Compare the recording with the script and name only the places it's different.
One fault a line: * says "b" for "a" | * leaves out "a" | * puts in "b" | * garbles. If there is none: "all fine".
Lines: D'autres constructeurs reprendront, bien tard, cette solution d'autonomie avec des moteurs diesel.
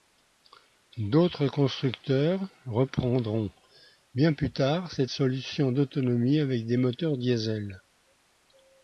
* puts in "plus"